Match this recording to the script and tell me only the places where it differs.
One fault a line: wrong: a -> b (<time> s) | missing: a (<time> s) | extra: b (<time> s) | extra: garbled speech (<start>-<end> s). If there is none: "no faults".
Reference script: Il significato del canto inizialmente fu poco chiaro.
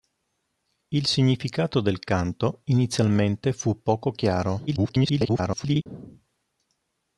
extra: garbled speech (4.7-5.9 s)